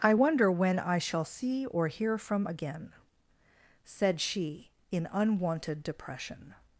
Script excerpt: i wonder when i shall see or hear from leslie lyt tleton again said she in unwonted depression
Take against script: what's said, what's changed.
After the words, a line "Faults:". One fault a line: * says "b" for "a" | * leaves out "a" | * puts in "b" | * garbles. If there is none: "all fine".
i wonder when i shall see or hear from again said she in unwonted depression
Faults:
* leaves out "leslie lyt tleton"